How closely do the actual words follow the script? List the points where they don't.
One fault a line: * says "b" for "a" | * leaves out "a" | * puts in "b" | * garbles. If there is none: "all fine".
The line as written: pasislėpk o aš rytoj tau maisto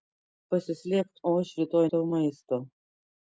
all fine